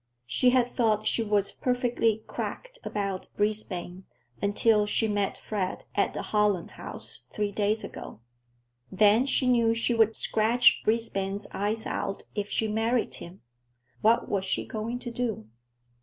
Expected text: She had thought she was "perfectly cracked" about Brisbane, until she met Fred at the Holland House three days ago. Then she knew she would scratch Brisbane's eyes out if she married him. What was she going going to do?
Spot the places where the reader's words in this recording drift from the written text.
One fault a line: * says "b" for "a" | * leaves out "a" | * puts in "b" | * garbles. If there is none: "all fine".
* leaves out "going"